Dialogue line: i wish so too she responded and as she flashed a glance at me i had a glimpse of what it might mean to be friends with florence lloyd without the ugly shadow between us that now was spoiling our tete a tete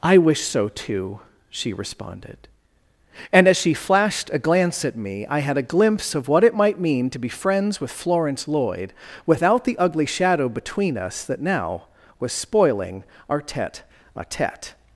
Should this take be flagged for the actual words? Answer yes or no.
no